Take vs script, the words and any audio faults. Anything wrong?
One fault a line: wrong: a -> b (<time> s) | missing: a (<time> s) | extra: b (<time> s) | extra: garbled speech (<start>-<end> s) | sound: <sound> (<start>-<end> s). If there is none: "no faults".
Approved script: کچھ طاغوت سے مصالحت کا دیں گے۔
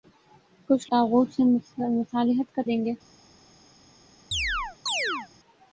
sound: chirp (4.3-5.3 s)